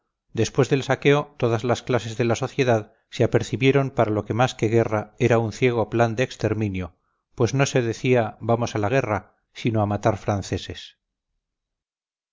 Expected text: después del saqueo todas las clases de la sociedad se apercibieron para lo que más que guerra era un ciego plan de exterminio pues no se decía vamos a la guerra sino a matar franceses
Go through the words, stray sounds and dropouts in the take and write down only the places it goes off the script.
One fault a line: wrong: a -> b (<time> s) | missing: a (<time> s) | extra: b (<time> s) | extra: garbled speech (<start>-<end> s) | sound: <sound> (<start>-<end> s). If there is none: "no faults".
no faults